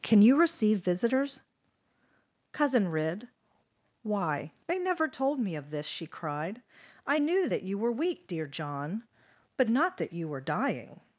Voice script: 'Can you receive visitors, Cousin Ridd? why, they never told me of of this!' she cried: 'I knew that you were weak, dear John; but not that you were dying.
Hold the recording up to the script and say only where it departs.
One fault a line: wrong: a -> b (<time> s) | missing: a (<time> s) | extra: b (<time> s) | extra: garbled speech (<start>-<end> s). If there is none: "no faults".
missing: of (5.7 s)